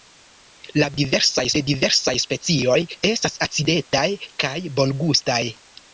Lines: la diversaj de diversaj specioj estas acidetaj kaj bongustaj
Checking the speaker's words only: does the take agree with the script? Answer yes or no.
yes